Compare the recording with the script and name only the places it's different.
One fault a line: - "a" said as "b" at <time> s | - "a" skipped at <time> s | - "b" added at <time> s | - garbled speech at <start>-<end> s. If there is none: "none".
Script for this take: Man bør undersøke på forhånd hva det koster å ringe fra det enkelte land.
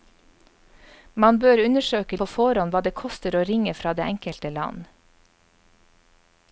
none